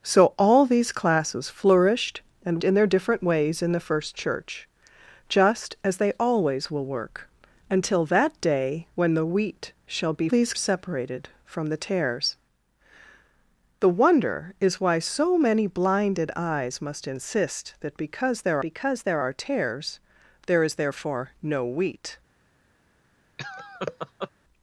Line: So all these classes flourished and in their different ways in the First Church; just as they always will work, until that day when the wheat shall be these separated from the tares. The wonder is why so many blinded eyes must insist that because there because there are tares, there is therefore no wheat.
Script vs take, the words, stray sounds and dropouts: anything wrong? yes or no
yes